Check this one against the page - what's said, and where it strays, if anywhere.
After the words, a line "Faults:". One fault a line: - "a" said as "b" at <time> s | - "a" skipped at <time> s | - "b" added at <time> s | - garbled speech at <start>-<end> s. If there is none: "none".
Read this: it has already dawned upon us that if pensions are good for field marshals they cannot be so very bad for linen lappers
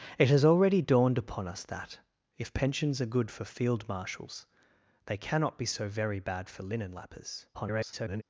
it has already dawned upon us that if pensions are good for field marshals they cannot be so very bad for linen lappers [garbled]
Faults:
- garbled speech at 7.5-8.2 s